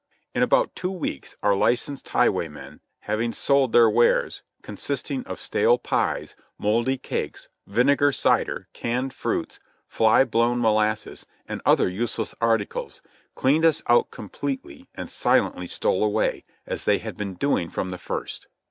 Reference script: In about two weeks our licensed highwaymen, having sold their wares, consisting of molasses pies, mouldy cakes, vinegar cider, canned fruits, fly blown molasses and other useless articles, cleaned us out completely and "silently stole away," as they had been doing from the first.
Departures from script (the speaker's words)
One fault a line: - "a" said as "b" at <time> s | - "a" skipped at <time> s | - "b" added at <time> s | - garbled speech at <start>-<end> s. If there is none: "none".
- "molasses" said as "stale" at 5.4 s